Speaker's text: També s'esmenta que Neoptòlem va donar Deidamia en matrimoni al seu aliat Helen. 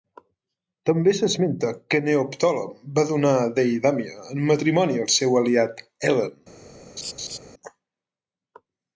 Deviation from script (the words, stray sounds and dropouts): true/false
true